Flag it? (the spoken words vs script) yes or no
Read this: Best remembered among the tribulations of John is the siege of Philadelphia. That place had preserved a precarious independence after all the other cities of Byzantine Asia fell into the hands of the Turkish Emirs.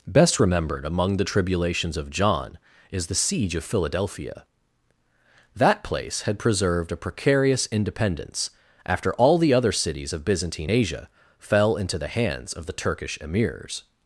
no